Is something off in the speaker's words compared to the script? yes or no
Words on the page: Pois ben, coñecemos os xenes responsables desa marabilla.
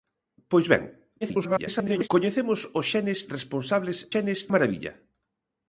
yes